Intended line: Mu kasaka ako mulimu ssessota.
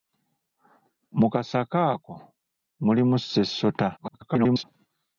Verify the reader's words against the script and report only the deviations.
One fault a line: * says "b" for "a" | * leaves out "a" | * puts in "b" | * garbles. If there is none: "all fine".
* garbles